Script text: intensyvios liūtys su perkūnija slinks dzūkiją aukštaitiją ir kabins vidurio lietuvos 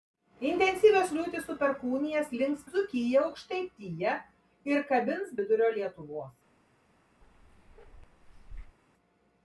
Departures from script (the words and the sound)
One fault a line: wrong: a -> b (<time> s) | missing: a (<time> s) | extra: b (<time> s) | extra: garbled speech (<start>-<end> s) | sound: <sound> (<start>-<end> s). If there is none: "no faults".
sound: bark (7.2-8.8 s)